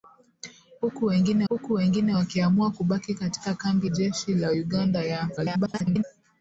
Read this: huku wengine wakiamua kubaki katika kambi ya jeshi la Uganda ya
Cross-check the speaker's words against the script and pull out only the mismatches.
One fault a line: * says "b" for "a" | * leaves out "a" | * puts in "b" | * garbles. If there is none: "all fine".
* puts in "huku wengine"
* leaves out "ya"
* garbles